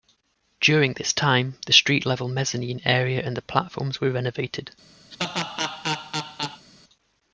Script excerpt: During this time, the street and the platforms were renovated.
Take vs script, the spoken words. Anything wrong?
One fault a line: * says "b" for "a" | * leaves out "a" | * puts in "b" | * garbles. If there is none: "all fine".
* puts in "level mezzanine area"